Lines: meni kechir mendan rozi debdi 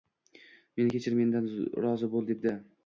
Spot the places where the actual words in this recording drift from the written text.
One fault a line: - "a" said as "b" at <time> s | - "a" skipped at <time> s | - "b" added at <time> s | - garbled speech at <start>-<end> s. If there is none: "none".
- "bo`l" added at 2.2 s